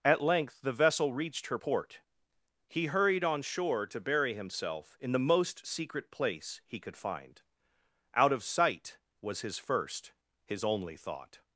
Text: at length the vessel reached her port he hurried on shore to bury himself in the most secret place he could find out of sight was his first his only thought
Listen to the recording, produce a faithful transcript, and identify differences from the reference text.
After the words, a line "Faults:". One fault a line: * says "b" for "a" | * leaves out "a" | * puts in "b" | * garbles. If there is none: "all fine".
at length the vessel reached her port he hurried on shore to bury himself in the most secret place he could find out of sight was his first his only thought
Faults:
all fine